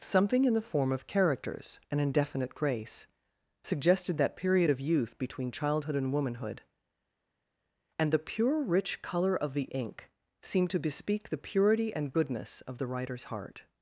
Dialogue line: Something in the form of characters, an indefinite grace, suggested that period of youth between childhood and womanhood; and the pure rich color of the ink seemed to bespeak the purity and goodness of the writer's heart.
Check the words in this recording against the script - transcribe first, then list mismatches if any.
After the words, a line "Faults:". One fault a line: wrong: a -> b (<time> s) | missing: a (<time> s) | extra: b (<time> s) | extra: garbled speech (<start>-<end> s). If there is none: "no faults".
Something in the form of characters, an indefinite grace, suggested that period of youth between childhood and womanhood; and the pure rich color of the ink seemed to bespeak the purity and goodness of the writer's heart.
Faults:
no faults